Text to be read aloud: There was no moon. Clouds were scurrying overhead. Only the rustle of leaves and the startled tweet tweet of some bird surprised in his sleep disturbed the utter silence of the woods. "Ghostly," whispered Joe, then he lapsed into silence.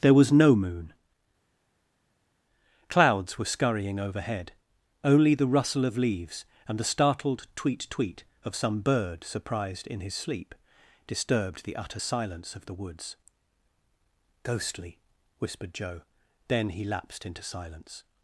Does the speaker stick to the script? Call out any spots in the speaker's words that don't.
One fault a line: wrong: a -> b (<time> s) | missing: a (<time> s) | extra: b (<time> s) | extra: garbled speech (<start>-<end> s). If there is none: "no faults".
no faults